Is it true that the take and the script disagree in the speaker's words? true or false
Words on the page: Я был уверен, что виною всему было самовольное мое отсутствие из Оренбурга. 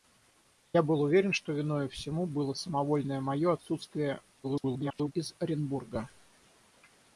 true